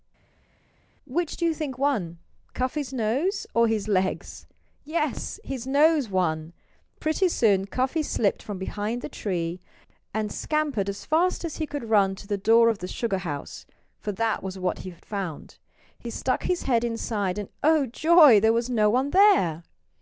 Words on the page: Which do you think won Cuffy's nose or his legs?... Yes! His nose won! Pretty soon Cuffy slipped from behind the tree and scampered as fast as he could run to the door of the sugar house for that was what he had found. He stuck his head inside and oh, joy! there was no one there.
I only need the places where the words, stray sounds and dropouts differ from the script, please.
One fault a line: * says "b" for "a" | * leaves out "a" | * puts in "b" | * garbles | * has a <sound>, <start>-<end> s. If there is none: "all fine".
all fine